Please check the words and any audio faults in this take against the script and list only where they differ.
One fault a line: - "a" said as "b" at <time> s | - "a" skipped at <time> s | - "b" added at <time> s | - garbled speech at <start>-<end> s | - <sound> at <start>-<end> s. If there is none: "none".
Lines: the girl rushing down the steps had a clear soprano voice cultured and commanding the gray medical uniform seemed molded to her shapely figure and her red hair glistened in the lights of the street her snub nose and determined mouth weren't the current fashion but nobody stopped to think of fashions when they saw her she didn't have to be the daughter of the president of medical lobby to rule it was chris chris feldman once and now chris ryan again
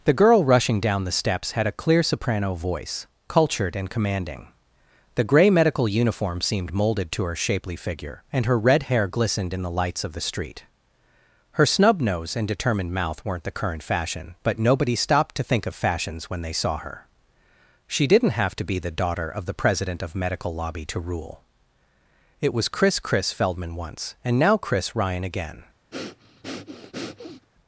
- breath at 25.9-27.5 s